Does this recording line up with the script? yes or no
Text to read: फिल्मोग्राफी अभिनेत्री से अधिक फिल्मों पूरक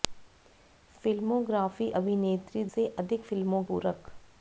yes